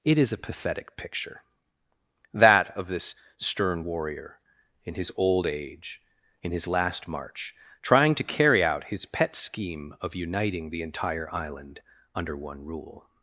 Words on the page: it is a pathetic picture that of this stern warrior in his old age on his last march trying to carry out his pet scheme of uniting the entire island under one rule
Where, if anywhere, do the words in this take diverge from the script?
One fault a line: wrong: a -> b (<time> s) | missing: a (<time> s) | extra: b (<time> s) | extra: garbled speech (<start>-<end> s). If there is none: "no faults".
wrong: on -> in (6.4 s)